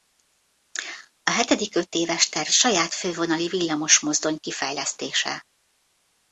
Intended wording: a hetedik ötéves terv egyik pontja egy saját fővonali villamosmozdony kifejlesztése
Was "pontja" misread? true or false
true